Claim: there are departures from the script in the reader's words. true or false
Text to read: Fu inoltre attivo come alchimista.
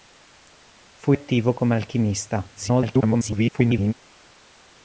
true